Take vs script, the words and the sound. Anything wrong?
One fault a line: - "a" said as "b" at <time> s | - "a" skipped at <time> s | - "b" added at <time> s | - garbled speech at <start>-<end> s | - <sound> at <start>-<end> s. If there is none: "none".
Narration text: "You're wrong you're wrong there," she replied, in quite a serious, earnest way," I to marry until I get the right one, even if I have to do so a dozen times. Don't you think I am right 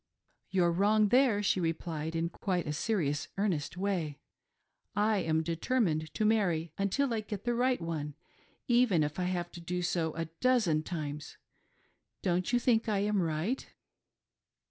- "you're wrong" skipped at 1.1 s
- "am determined" added at 5.2 s